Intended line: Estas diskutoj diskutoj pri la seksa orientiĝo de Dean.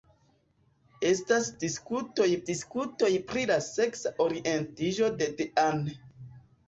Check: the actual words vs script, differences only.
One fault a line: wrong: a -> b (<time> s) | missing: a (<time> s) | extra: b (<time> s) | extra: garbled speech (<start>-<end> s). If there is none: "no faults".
no faults